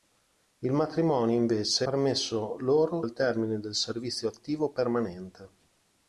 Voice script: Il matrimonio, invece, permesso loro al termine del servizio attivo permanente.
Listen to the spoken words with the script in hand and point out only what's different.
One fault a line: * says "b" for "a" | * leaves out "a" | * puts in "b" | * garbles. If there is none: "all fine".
all fine